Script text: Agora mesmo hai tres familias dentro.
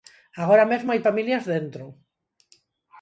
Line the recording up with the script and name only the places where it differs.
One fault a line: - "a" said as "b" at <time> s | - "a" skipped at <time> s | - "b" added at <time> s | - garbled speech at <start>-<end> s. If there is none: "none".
- "tres" skipped at 1.0 s